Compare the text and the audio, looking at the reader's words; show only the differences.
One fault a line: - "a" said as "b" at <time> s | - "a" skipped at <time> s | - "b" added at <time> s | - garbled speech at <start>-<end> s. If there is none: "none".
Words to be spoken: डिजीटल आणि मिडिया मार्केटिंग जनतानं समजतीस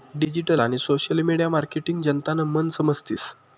- "सोशल" added at 0.8 s
- "मन" added at 2.5 s